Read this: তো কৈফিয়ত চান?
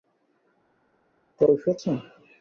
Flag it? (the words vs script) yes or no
no